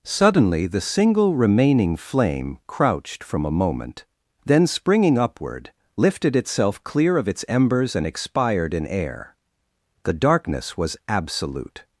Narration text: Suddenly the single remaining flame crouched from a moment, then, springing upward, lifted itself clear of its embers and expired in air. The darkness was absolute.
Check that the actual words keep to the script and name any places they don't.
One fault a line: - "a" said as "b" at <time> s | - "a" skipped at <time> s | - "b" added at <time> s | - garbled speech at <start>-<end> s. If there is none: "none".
none